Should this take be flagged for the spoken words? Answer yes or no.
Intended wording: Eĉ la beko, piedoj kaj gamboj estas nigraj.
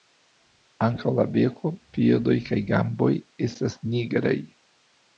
yes